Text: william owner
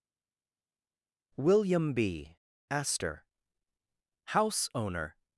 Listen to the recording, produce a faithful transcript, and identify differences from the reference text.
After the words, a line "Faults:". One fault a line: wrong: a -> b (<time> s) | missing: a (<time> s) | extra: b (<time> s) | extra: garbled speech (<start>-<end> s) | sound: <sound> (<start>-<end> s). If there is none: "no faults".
william b astor house owner
Faults:
extra: b astor house (1.9 s)